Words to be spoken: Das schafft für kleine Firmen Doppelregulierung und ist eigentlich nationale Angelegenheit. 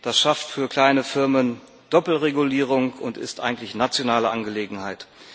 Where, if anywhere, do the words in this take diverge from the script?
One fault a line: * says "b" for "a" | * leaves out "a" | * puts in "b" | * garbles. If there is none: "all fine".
all fine